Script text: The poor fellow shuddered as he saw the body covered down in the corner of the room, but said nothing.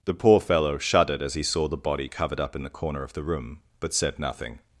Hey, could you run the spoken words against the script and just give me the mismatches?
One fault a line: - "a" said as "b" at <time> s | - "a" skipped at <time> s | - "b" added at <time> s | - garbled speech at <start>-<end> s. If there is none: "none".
- "down" said as "up" at 2.4 s